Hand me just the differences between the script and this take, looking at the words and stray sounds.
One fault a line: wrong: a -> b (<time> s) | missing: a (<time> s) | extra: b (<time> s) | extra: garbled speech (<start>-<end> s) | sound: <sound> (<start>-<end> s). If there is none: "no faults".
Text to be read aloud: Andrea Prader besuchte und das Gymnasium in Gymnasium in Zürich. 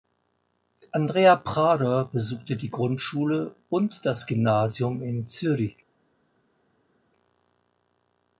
extra: die Grundschule (2.5 s)
missing: Gymnasium in (5.3 s)